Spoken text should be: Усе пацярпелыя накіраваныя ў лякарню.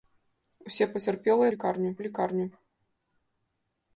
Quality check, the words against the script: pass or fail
fail